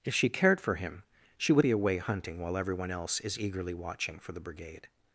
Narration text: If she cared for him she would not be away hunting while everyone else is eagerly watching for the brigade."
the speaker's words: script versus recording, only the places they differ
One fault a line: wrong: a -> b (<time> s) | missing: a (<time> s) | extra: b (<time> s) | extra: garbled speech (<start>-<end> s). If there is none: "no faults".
missing: not (1.6 s)